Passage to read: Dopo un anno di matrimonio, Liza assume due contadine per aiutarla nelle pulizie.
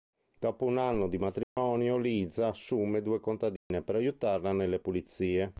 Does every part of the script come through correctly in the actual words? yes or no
yes